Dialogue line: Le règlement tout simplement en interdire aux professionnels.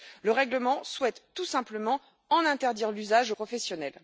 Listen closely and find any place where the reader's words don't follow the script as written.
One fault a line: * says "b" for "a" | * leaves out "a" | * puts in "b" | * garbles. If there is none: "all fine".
* puts in "souhaite"
* puts in "l'usage"